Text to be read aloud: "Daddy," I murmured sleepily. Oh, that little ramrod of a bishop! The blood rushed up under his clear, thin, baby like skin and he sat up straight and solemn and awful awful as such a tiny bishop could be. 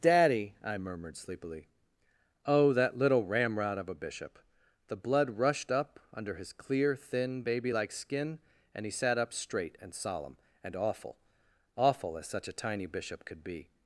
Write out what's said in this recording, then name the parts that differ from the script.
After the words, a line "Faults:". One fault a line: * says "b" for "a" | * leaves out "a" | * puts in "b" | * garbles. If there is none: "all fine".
"Daddy," I murmured sleepily. Oh, that little ramrod of a bishop! The blood rushed up under his clear, thin, baby like skin and he sat up straight and solemn and awful awful as such a tiny bishop could be.
Faults:
all fine